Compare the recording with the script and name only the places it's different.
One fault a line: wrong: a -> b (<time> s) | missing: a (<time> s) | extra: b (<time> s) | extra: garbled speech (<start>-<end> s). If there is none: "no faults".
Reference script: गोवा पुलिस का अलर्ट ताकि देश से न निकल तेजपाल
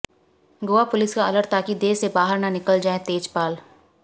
extra: बाहर (2.2 s)
extra: जाएं (2.8 s)